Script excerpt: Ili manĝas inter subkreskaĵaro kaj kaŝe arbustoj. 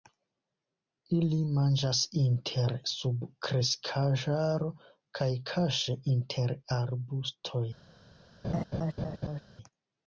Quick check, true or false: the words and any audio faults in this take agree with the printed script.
false